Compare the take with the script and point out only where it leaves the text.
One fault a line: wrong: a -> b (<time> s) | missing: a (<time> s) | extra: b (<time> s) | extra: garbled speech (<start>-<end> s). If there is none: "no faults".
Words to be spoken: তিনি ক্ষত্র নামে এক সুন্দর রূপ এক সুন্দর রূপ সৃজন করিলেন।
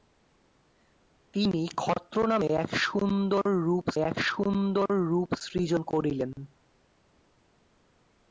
no faults